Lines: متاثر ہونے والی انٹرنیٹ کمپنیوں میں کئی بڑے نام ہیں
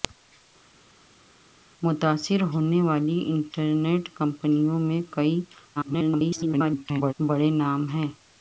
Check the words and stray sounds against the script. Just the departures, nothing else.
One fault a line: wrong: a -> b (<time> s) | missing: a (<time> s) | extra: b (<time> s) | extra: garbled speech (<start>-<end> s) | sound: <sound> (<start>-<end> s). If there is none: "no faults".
extra: garbled speech (5.8-7.1 s)